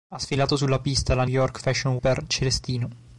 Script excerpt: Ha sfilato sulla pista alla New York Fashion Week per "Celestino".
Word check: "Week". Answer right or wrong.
wrong